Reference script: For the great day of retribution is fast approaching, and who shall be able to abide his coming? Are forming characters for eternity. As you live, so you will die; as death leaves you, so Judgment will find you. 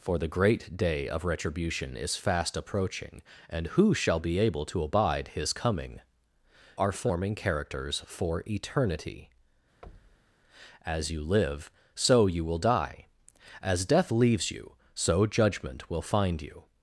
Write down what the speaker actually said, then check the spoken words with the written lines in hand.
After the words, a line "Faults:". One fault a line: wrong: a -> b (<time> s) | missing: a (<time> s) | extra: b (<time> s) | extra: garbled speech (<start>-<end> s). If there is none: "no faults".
For the great day of retribution is fast approaching, and who shall be able to abide his coming? Are forming characters for eternity. As you live, so you will die; as death leaves you, so Judgment will find you.
Faults:
no faults